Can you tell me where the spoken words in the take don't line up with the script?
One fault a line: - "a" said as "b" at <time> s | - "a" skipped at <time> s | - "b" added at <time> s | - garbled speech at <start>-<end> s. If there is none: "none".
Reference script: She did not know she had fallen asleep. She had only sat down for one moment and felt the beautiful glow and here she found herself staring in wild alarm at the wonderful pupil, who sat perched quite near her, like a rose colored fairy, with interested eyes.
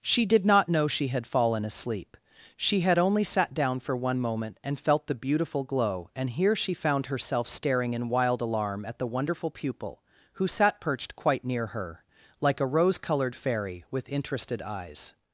none